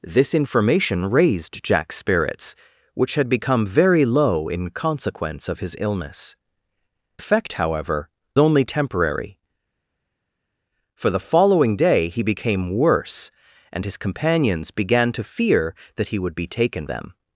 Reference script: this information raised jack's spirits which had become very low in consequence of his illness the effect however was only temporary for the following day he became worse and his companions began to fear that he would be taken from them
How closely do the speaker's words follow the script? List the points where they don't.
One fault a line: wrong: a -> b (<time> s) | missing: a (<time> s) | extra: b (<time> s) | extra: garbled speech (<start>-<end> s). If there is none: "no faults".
missing: the (6.3 s)
missing: was (8.1 s)
missing: from (16.9 s)